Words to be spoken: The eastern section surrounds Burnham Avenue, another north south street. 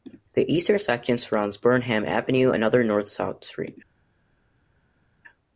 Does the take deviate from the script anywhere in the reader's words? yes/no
no